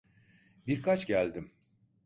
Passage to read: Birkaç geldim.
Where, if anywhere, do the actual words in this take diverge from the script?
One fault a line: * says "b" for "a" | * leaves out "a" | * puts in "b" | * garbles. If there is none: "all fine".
all fine